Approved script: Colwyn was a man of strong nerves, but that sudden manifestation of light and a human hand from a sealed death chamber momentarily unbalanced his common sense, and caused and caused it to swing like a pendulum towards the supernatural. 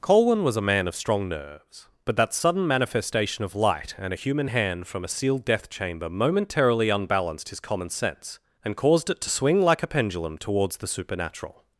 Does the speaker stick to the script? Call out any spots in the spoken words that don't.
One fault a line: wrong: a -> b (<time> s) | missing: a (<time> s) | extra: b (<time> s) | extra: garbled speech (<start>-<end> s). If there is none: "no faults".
missing: and caused (9.1 s)